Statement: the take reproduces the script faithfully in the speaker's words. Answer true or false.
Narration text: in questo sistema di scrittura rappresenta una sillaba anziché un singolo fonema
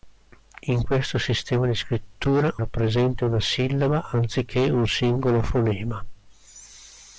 true